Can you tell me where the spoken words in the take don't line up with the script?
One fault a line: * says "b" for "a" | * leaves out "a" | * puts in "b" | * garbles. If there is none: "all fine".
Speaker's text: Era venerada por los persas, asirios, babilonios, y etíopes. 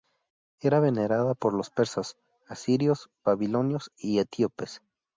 all fine